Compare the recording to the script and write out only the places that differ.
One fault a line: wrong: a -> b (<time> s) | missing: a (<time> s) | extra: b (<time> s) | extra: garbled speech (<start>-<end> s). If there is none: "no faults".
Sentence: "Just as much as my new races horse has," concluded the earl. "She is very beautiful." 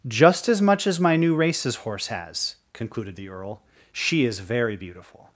no faults